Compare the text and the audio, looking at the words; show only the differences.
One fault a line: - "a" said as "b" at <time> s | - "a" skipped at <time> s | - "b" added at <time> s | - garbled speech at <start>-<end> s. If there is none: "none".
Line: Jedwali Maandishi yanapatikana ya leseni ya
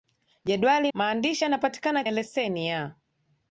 none